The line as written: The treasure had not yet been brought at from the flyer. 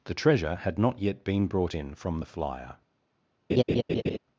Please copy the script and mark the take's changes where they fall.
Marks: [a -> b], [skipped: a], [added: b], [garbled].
The treasure had not yet been brought [at -> in] from the flyer.